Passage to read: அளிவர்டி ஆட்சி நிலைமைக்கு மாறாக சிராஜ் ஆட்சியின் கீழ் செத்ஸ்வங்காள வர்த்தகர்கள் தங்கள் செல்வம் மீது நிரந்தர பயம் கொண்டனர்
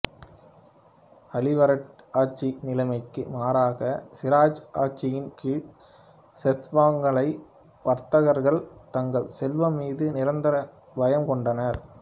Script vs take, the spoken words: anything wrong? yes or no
no